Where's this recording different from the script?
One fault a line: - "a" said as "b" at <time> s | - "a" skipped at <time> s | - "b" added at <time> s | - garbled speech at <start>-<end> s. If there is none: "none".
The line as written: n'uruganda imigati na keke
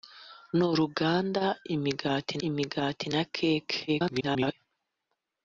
- "imigati" added at 2.5 s
- garbled speech at 3.9-4.5 s